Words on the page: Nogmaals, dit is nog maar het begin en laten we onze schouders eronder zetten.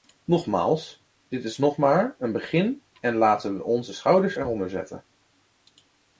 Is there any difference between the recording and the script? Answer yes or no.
yes